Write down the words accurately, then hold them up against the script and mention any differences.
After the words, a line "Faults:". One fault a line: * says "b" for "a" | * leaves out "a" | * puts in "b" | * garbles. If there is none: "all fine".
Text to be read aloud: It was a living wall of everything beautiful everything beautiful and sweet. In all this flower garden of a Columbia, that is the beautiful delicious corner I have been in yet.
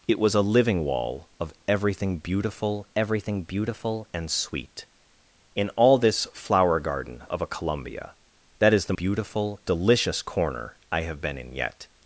It was a living wall of everything beautiful everything beautiful and sweet. In all this flower garden of a Columbia, that is the beautiful delicious corner I have been in yet.
Faults:
all fine